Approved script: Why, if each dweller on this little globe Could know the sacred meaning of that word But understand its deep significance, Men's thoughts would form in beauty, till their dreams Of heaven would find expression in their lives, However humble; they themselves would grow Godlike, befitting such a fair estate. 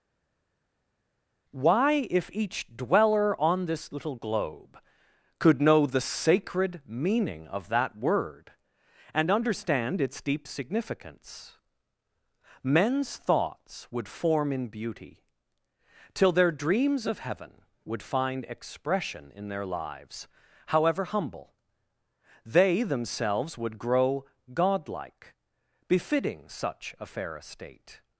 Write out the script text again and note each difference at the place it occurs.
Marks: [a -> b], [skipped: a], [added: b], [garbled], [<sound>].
Why, if each dweller on this little globe Could know the sacred meaning of that word [But -> And] understand its deep significance, Men's thoughts would form in beauty, till their dreams Of heaven would find expression in their lives, However humble; they themselves would grow Godlike, befitting such a fair estate.